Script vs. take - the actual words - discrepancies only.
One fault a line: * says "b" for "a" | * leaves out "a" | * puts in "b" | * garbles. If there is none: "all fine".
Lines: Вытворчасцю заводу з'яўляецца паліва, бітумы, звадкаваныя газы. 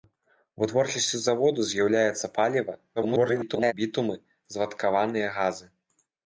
* garbles